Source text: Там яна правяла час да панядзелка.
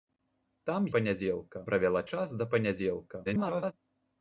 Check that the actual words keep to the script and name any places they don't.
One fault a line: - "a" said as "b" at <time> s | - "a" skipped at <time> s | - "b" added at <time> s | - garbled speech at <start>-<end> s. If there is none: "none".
- "яна" said as "панядзелка" at 1.0 s
- garbled speech at 3.3-3.7 s